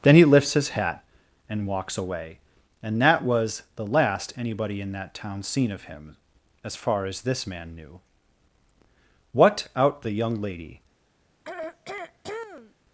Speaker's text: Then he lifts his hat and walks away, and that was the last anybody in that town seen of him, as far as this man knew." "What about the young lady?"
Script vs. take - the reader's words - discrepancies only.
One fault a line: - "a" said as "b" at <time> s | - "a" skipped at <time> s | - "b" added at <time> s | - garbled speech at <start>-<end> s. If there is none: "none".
- "about" said as "out" at 9.8 s